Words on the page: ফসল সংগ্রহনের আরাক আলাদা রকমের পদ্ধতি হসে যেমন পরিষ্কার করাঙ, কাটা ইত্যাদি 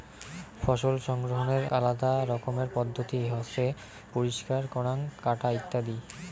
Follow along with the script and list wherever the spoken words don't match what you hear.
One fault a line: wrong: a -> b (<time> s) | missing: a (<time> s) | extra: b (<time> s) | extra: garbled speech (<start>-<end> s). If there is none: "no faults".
missing: আরাক (1.6 s)
missing: যেমন (3.7 s)